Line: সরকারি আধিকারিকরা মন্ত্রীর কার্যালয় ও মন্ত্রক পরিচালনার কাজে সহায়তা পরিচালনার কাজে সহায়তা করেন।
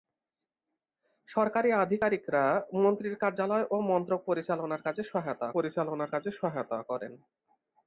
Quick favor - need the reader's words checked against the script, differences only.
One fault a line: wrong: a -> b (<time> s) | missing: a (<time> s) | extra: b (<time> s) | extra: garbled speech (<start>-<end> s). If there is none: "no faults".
no faults